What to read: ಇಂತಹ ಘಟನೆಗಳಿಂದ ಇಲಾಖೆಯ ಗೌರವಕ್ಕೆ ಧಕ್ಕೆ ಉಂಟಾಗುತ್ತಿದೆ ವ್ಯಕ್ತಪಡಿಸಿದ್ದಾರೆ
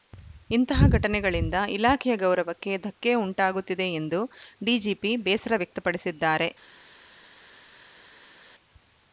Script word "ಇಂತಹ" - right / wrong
right